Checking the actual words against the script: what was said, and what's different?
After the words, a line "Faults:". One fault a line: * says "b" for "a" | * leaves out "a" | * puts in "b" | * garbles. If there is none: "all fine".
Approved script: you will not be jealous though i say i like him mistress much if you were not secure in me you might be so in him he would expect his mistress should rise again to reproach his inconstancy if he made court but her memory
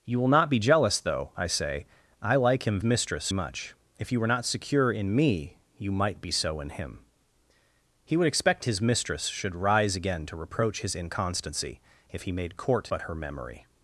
you will not be jealous though i say i like him mistress much if you were not secure in me you might be so in him he would expect his mistress should rise again to reproach his inconstancy if he made court but her memory
Faults:
all fine